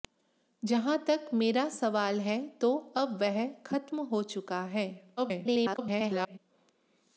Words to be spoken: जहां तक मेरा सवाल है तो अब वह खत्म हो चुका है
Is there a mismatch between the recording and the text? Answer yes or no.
yes